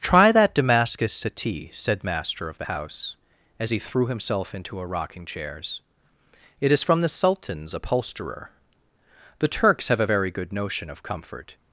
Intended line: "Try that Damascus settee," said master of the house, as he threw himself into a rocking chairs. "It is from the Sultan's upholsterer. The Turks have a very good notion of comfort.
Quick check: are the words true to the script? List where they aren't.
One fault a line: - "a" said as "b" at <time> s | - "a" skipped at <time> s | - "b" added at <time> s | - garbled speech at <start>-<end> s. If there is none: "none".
none